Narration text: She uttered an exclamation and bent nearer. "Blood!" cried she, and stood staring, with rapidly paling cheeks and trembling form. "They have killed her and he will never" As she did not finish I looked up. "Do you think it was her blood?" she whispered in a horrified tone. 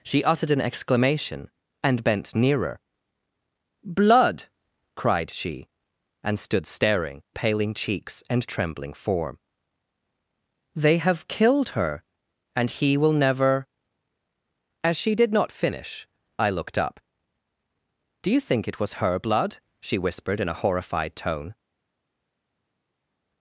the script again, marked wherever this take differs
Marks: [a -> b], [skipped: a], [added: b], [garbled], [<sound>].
She uttered an exclamation and bent nearer. "Blood!" cried she, and stood staring, [skipped: with rapidly] paling cheeks and trembling form. "They have killed her and he will never" As she did not finish I looked up. "Do you think it was her blood?" she whispered in a horrified tone.